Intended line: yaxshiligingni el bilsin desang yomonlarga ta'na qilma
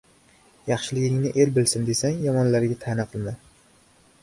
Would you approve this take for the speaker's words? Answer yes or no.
yes